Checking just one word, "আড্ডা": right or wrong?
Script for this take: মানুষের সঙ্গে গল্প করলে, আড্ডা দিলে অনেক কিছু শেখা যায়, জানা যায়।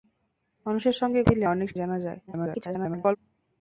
wrong